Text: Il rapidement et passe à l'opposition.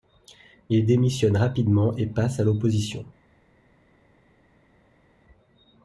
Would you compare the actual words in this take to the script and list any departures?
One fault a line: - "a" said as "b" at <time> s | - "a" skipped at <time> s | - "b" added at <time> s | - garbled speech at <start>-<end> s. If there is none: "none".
- "démissionne" added at 0.8 s